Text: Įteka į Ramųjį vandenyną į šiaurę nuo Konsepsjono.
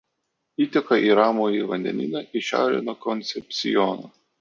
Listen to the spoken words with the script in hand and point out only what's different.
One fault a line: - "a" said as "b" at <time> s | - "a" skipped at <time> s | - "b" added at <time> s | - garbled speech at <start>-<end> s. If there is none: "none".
none